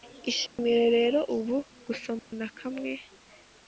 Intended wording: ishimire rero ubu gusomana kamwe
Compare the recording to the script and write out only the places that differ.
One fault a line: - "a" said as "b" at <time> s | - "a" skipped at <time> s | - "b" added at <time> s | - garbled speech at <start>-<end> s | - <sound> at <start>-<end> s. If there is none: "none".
- dropout at 0.5-0.6 s
- dropout at 2.2-2.3 s